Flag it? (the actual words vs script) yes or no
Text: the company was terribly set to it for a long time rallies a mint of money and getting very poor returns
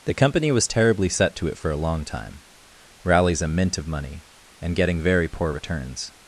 no